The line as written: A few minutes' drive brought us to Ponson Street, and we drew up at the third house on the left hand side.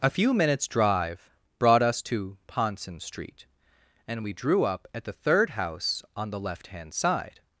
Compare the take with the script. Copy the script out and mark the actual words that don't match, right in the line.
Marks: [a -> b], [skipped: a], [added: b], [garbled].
A few minutes' drive brought us to Ponson Street, and we drew up at the third house on the left hand side.